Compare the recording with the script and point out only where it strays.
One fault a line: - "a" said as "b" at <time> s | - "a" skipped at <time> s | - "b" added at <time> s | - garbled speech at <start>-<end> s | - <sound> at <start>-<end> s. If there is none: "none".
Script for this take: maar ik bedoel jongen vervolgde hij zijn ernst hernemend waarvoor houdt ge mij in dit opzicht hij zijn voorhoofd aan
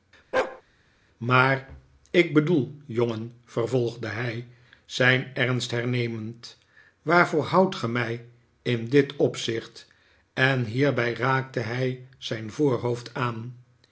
- bark at 0.3-0.6 s
- "en hierbij raakte" added at 10.3 s